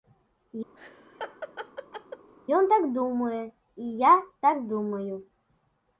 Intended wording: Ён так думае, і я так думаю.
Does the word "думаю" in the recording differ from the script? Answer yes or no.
no